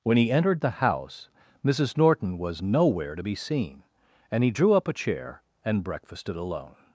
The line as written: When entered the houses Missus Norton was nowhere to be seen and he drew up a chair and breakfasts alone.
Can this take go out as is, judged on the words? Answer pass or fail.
fail